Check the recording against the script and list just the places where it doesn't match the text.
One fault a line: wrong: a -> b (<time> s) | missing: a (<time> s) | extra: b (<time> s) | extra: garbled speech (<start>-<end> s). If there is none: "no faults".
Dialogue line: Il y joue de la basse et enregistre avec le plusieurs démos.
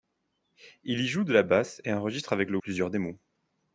no faults